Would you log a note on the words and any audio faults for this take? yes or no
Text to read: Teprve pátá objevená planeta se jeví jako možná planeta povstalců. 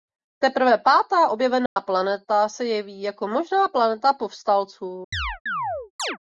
yes